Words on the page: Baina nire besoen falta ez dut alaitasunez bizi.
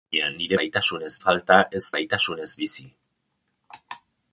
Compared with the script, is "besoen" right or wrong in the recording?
wrong